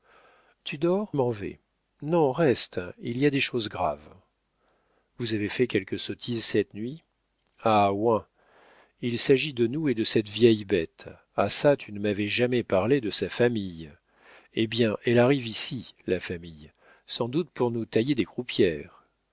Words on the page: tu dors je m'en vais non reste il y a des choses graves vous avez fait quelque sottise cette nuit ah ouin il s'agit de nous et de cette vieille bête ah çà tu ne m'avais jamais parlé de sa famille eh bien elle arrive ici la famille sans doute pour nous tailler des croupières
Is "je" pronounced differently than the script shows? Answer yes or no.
yes